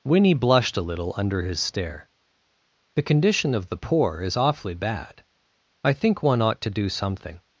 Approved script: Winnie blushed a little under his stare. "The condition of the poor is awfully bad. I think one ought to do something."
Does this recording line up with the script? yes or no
yes